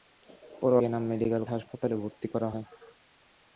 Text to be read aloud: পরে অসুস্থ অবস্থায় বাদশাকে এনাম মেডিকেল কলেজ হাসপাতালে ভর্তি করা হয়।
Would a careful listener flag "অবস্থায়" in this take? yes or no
yes